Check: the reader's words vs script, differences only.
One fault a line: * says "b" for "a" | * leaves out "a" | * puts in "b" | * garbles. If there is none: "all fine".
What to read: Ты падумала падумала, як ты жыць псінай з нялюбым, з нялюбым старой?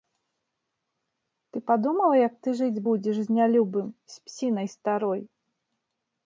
* leaves out "падумала"
* says "будзеш" for "псінай"
* says "псінай" for "нялюбым"